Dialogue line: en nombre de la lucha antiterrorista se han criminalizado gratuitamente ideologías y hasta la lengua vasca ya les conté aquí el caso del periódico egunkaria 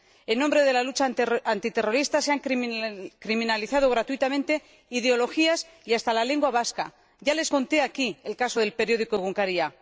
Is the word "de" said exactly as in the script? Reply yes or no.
yes